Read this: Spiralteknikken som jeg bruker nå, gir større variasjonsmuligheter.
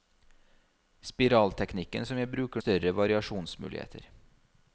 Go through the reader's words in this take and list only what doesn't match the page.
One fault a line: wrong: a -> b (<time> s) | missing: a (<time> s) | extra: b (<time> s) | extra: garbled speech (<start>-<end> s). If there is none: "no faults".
missing: nå gir (2.6 s)